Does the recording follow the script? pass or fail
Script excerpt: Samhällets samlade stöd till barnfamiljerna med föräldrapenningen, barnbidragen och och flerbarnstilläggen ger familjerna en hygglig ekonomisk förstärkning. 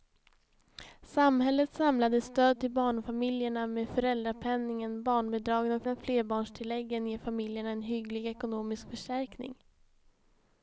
pass